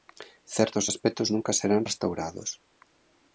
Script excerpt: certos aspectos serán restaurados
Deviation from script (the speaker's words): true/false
true